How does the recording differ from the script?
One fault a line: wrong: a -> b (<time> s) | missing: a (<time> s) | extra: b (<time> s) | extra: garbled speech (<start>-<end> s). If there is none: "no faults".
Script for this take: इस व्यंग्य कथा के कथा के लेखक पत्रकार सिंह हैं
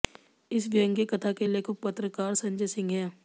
missing: कथा के (1.5 s)
extra: संजय (2.3 s)